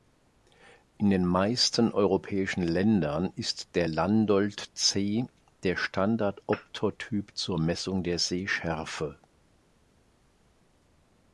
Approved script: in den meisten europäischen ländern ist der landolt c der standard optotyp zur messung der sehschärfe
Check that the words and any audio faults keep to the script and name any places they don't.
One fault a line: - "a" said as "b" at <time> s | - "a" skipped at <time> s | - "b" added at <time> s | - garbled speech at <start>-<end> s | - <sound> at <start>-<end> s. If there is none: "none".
none